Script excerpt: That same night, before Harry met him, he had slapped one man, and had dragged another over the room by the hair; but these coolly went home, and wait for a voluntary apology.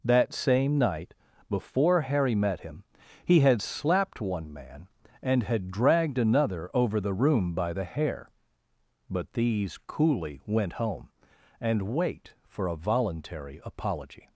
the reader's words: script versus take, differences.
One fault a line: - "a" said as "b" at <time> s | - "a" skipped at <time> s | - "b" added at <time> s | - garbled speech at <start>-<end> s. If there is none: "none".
none